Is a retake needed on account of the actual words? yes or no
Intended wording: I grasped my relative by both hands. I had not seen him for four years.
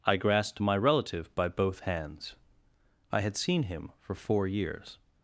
yes